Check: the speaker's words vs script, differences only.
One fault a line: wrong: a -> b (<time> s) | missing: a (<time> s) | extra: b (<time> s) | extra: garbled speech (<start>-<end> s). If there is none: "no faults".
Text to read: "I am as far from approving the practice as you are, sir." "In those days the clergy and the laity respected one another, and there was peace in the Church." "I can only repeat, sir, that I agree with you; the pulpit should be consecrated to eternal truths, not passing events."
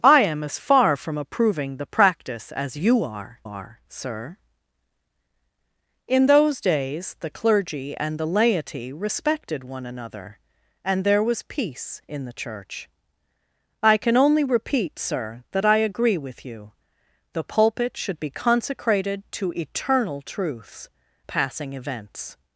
extra: are (3.4 s)
missing: not (20.9 s)